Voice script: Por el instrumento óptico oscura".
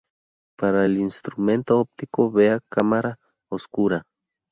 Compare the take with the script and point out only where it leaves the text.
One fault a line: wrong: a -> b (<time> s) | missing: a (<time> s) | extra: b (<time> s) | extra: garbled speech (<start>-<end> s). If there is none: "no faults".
wrong: Por -> Para (0.6 s)
extra: vea Cámara (2.3 s)